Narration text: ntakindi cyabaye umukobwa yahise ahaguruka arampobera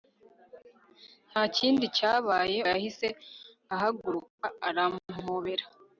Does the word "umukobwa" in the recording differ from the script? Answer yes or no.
yes